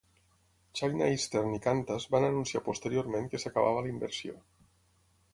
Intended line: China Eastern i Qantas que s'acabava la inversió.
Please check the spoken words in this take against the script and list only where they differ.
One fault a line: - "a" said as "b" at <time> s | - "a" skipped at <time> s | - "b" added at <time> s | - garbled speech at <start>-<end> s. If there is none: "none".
- "van anunciar posteriorment" added at 2.1 s